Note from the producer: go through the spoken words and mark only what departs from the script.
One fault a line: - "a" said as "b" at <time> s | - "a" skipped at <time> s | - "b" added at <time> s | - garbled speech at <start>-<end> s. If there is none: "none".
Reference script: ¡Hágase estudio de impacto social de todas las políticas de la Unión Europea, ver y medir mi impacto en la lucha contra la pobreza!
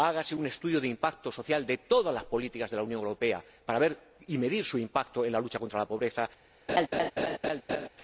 - "un" added at 0.3 s
- "para" added at 3.6 s
- "mi" said as "su" at 4.7 s